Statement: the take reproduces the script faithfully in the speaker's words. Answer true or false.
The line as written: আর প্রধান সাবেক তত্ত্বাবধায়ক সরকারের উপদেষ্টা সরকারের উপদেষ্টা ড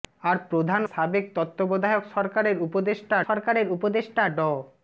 true